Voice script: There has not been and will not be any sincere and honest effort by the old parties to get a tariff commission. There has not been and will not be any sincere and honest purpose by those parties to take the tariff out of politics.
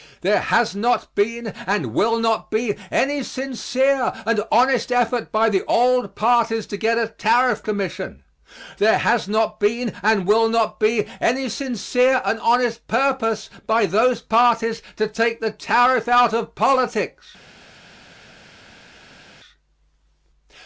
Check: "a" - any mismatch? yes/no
no